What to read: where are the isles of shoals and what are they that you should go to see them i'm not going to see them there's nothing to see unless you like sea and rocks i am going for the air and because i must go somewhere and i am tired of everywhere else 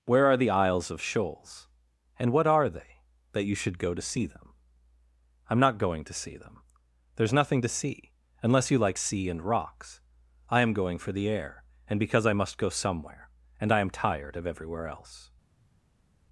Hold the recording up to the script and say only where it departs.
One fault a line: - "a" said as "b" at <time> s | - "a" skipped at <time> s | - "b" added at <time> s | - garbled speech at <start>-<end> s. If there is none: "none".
none